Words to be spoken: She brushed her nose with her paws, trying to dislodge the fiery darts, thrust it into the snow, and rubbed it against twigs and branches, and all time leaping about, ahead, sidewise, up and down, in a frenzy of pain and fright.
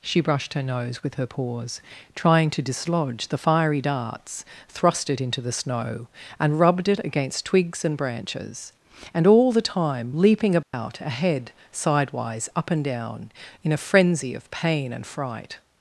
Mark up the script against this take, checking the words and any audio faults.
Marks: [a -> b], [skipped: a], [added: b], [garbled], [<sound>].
She brushed her nose with her paws, trying to dislodge the fiery darts, thrust it into the snow, and rubbed it against twigs and branches, and all [added: the] time leaping about, [dropout] ahead, sidewise, up and down, in a frenzy of pain and fright.